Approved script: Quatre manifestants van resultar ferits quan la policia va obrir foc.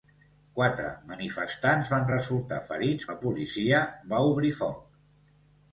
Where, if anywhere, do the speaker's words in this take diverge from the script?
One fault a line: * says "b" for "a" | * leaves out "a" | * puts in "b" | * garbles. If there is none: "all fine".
* leaves out "quan"